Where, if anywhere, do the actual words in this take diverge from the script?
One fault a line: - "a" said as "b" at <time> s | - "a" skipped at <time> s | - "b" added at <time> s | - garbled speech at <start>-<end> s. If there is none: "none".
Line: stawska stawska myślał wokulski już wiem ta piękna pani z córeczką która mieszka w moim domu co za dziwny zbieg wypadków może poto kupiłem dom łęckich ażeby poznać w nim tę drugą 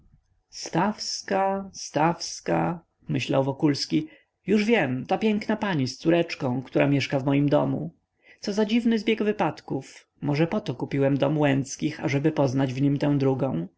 none